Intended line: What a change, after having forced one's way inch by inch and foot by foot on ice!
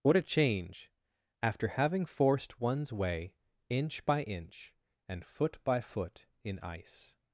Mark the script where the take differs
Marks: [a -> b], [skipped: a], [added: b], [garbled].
What a change, after having forced one's way inch by inch and foot by foot [on -> in] ice!